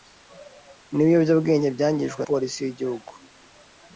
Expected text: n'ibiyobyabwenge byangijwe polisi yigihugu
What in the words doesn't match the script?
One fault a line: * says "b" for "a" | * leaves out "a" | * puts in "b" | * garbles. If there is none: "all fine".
all fine